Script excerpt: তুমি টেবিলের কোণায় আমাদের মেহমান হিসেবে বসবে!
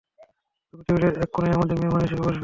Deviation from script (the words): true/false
true